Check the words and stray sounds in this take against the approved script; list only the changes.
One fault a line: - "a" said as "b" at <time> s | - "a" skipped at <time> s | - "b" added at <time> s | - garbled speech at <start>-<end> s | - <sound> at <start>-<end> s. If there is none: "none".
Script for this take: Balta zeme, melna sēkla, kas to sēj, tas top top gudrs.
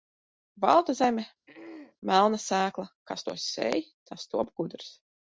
- throat clearing at 1.5-2.0 s
- "top" skipped at 4.5 s